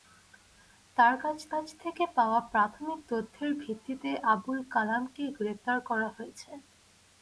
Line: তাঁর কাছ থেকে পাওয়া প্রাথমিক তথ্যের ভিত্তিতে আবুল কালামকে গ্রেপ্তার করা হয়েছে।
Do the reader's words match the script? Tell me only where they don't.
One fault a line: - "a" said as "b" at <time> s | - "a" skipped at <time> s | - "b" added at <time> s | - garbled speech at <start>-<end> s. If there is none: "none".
- "কাছ" added at 1.5 s